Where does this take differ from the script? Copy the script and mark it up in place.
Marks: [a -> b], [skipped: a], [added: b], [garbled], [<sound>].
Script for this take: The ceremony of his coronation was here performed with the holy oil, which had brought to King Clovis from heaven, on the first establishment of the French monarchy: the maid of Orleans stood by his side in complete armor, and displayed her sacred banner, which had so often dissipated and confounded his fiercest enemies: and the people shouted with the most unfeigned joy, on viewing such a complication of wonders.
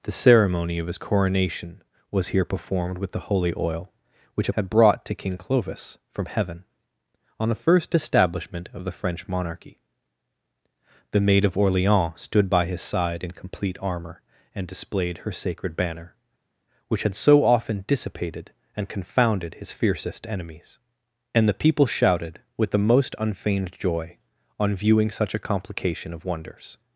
The ceremony of his coronation was here performed with the holy oil, which had brought to King Clovis from heaven, on the first establishment of the French monarchy: the maid of Orleans stood by his side in complete armor, and displayed her sacred banner, which had so often dissipated and confounded his fiercest enemies: and the people shouted with the most unfeigned joy, on viewing such a complication of wonders.